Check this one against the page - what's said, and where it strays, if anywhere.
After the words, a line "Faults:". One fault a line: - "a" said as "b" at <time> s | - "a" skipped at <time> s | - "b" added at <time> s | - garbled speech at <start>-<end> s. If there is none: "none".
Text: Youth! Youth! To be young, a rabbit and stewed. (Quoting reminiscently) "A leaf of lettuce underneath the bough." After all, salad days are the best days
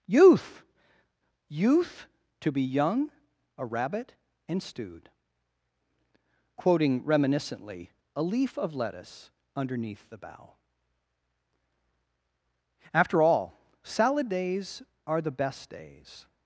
Youth! Youth! To be young, a rabbit and stewed. (Quoting reminiscently) "A leaf of lettuce underneath the bough." After all, salad days are the best days
Faults:
none